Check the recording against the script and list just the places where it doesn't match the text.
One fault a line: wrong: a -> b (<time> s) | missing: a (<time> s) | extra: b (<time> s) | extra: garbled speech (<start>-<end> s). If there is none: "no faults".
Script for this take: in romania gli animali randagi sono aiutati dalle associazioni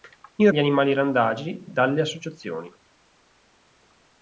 missing: romania (0.5 s)
missing: sono aiutati (1.6 s)